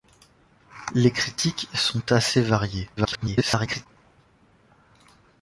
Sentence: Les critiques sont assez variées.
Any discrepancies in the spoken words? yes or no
yes